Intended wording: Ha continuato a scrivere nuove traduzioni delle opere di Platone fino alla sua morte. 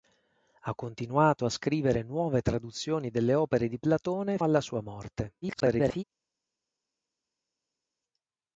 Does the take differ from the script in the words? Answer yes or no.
yes